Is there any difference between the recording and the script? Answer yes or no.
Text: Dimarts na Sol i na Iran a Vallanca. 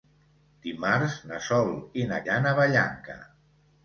no